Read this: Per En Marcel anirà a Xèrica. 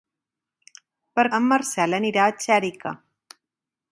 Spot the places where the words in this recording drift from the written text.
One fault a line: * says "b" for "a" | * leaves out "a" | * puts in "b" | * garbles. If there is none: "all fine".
all fine